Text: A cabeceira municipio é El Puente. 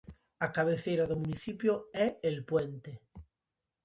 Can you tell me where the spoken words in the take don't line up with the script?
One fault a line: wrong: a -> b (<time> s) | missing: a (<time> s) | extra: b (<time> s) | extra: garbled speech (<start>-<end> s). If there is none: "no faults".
extra: do (1.1 s)